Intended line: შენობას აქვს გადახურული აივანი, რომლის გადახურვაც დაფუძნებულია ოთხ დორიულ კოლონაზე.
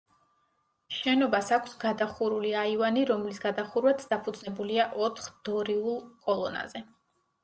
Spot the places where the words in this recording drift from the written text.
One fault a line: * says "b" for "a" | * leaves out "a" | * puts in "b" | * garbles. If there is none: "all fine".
all fine